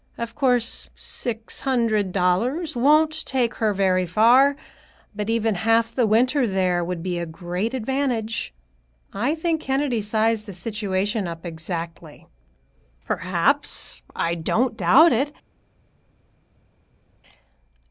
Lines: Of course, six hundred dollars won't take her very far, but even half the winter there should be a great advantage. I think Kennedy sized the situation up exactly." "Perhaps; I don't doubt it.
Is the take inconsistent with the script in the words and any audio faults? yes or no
yes